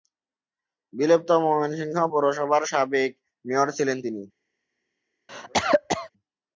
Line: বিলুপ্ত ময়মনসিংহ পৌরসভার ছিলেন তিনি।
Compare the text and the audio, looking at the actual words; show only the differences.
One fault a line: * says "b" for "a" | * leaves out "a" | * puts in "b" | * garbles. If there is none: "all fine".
* puts in "সাবেক মেয়র"